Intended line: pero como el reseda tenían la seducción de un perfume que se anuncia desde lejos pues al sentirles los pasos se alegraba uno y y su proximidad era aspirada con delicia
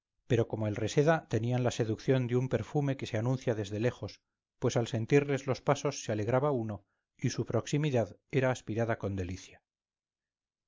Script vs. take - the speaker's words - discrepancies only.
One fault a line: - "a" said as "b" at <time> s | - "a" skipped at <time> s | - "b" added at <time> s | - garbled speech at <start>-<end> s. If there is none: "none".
- "y" skipped at 7.3 s